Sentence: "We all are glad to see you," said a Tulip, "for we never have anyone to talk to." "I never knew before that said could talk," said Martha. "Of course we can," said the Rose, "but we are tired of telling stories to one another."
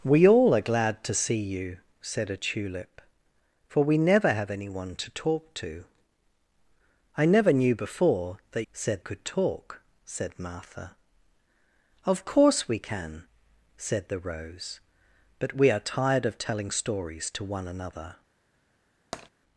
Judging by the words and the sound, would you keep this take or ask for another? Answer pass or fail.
fail